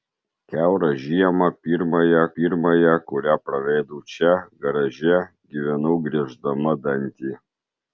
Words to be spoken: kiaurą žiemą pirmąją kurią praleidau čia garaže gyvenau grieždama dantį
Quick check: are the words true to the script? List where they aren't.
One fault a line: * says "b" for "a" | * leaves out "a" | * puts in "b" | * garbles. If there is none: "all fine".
* puts in "pirmąją"